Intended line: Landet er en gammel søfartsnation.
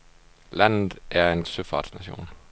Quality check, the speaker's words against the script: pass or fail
fail